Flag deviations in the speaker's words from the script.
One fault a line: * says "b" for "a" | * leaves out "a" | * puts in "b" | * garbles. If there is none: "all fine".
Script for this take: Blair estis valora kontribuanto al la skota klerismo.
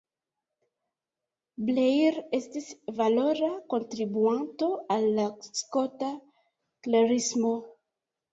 all fine